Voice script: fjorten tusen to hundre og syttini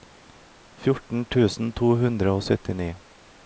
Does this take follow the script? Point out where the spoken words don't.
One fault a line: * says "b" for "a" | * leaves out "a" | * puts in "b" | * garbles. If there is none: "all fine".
all fine